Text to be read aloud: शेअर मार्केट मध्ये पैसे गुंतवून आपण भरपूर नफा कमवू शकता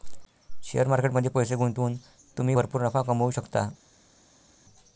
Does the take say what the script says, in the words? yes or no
no